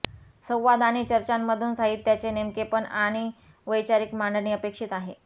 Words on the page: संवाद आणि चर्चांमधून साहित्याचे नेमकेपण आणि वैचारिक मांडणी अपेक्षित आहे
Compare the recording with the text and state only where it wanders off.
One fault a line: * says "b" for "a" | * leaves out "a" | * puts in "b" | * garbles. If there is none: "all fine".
all fine